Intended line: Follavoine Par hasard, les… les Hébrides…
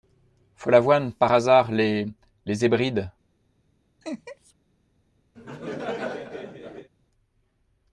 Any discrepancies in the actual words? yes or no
no